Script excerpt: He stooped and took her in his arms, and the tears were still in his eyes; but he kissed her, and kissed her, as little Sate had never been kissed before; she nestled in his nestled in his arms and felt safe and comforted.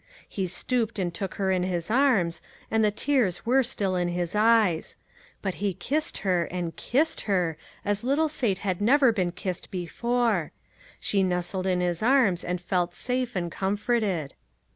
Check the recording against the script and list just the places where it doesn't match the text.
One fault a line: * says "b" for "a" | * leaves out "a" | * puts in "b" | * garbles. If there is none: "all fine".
* leaves out "nestled in his"